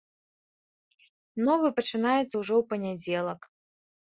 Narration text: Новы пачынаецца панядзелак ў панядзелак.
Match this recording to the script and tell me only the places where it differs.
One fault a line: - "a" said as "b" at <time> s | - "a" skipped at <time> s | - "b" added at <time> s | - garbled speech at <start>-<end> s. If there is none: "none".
- "панядзелак" said as "ўжо" at 2.4 s